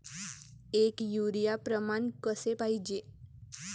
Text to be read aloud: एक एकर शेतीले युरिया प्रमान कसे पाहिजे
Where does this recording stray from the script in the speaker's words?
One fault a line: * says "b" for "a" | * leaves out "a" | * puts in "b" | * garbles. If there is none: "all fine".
* leaves out "एकर शेतीले"